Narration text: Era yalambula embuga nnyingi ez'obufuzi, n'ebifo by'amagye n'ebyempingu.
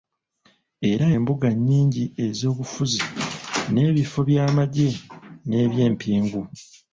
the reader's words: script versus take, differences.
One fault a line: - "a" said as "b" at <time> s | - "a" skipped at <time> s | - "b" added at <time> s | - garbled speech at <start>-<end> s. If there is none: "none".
- "yalambula" skipped at 1.1 s